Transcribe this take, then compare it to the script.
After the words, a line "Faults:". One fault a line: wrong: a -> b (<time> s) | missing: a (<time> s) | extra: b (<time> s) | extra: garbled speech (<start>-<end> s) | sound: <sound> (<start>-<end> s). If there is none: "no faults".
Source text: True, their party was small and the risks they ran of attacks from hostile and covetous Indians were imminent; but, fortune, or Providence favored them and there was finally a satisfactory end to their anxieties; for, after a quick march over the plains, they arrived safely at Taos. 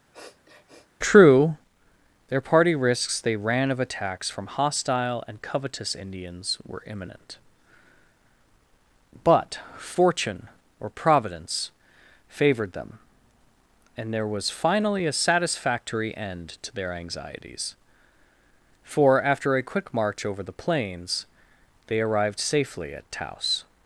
True, their party risks they ran of attacks from hostile and covetous Indians were imminent; but, fortune, or Providence favored them and there was finally a satisfactory end to their anxieties; for, after a quick march over the plains, they arrived safely at Taos.
Faults:
sound: sniff (0.1-0.9 s)
missing: was small and the (2.8 s)